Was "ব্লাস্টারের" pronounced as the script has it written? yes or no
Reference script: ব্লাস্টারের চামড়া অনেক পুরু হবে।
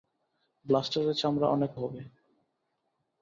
yes